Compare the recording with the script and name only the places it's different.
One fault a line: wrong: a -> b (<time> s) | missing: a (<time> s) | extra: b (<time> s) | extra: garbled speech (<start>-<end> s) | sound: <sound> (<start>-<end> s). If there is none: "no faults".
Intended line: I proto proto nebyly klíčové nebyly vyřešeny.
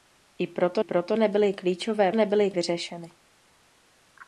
no faults